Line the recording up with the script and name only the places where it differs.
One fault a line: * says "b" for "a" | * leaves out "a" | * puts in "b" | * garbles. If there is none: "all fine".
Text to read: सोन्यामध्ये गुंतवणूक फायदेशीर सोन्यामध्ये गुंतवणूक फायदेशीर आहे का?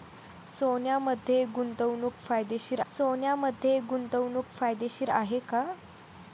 all fine